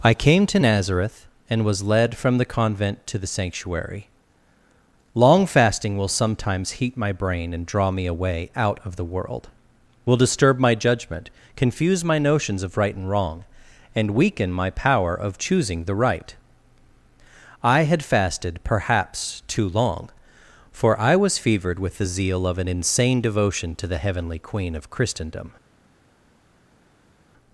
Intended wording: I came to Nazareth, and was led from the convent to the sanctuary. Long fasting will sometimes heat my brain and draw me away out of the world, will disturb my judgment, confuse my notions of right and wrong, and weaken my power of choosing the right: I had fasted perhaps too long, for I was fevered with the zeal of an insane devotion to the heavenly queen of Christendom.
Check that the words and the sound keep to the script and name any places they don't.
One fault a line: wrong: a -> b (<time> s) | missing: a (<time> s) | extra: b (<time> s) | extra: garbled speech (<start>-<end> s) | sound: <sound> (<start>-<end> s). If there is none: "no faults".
no faults